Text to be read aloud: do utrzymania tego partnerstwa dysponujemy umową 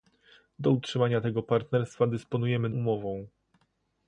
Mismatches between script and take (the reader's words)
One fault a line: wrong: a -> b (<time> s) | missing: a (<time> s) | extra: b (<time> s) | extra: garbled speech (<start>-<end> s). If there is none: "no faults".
no faults